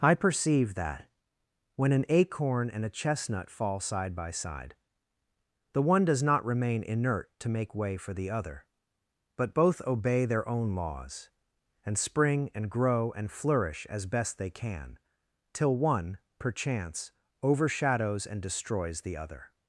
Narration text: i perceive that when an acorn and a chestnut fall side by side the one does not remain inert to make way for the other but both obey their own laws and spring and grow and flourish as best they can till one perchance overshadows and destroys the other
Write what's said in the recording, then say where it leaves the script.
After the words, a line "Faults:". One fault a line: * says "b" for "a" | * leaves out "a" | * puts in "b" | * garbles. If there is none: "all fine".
i perceive that when an acorn and a chestnut fall side by side the one does not remain inert to make way for the other but both obey their own laws and spring and grow and flourish as best they can till one perchance overshadows and destroys the other
Faults:
all fine